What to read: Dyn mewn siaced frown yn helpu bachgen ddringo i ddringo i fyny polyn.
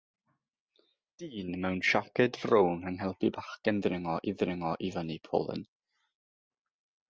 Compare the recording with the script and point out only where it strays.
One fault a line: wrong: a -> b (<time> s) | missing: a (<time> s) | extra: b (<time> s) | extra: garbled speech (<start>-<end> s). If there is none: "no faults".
no faults